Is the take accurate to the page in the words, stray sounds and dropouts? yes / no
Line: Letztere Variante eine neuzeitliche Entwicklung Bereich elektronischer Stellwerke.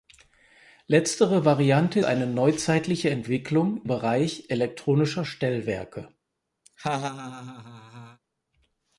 no